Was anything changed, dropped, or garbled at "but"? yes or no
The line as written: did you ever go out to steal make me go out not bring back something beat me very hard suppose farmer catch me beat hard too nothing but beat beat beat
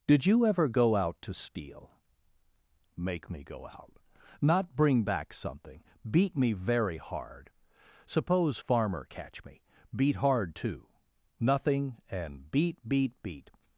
yes